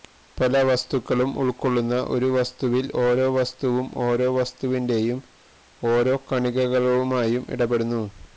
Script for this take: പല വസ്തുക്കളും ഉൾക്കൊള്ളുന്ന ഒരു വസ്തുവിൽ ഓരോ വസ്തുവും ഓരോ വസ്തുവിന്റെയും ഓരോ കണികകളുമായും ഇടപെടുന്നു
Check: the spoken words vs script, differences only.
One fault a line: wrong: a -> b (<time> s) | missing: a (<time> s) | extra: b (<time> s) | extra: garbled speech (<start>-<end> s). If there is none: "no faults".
no faults